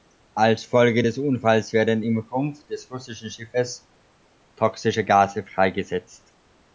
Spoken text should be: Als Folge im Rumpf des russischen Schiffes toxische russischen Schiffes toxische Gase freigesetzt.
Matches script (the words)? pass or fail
fail